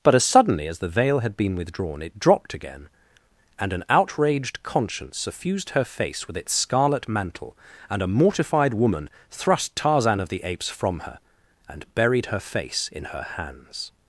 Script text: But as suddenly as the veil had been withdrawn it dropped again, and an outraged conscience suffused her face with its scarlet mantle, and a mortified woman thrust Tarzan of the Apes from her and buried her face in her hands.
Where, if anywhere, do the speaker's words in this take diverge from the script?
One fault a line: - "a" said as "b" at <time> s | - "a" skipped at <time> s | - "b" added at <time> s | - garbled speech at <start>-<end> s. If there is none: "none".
none